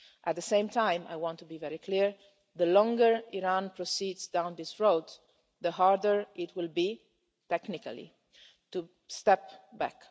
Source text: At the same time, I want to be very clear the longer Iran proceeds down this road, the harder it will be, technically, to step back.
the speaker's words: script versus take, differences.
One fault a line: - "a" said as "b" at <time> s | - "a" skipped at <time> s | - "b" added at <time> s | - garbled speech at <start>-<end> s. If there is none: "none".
none